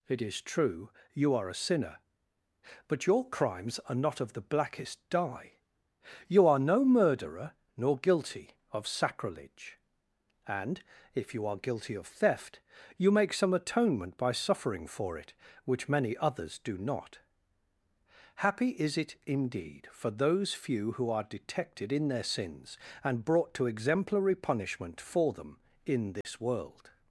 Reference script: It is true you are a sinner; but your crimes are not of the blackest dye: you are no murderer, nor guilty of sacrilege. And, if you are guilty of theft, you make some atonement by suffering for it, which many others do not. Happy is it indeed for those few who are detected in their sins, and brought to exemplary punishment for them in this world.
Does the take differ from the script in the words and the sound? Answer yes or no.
yes